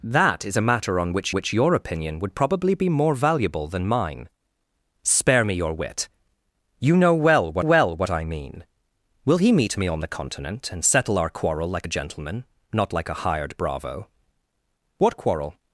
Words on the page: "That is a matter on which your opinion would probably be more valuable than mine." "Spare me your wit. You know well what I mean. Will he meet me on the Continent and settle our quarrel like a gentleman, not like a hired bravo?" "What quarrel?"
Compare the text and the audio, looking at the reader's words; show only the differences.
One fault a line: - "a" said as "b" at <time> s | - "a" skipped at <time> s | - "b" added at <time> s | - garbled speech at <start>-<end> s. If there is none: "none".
- "which" added at 1.3 s
- "well what" added at 7.6 s